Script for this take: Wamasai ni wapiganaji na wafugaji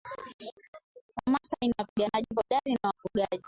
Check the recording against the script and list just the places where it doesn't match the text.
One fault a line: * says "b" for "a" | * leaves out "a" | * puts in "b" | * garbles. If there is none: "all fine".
* puts in "hodari"